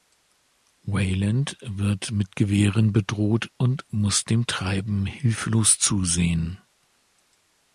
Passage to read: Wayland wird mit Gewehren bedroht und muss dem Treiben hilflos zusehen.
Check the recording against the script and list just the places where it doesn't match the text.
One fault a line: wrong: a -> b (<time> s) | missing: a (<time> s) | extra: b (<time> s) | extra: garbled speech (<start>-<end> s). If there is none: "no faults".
no faults